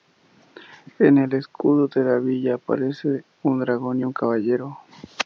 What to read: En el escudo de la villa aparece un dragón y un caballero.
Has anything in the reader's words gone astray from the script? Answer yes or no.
no